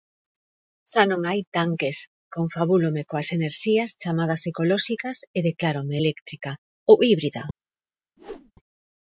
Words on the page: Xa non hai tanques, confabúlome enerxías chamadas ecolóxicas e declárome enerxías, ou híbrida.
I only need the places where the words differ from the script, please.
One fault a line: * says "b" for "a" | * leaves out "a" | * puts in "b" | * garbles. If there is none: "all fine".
* puts in "coas"
* says "eléctrica" for "enerxías"